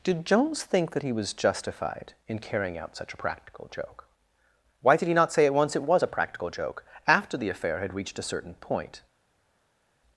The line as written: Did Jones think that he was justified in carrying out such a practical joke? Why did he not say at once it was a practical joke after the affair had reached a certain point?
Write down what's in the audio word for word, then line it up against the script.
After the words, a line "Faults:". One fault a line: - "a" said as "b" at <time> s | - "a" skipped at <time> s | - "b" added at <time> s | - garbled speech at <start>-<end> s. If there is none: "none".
Did Jones think that he was justified in carrying out such a practical joke? Why did he not say at once it was a practical joke after the affair had reached a certain point?
Faults:
none